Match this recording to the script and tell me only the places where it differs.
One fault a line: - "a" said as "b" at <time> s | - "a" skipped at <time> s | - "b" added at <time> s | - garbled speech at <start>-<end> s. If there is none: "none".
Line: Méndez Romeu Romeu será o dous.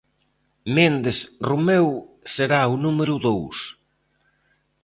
- "Romeu" skipped at 1.9 s
- "número" added at 2.8 s